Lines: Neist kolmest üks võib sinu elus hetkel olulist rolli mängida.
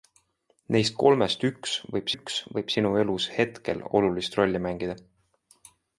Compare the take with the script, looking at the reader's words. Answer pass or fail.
fail